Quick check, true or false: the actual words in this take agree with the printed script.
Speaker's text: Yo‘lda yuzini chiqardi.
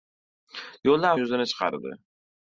true